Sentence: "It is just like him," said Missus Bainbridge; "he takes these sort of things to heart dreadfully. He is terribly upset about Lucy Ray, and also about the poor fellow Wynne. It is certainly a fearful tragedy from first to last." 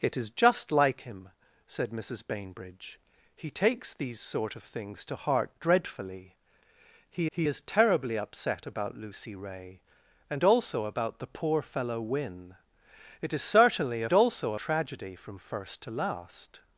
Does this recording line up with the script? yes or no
no